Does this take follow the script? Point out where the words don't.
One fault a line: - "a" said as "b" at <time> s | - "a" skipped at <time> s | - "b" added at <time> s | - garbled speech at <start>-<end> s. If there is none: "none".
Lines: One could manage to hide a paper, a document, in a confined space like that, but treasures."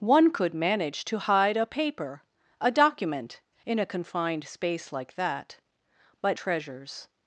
none